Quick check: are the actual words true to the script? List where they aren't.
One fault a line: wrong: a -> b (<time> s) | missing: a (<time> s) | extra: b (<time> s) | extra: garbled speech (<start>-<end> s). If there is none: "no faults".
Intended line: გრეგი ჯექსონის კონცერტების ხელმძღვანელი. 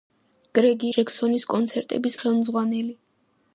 no faults